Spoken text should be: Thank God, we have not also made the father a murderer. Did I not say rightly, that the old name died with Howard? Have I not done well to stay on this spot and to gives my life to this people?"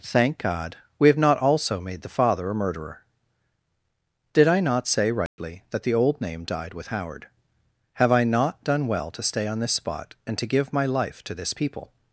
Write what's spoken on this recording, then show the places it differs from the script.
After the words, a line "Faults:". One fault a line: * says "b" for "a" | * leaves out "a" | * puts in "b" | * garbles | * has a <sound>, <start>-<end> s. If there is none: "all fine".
Thank God, we have not also made the father a murderer. Did I not say rightly, that the old name died with Howard? Have I not done well to stay on this spot and to give my life to this people?"
Faults:
* has a dropout, 5.3-5.4 s
* says "give" for "gives"